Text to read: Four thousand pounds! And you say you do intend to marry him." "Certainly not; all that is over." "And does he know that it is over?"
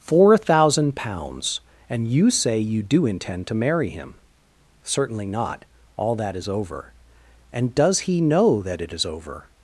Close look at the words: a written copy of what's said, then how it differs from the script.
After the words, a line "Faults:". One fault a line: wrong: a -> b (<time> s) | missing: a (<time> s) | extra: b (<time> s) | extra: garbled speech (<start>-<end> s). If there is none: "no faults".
Four thousand pounds! And you say you do intend to marry him." "Certainly not; all that is over." "And does he know that it is over?"
Faults:
no faults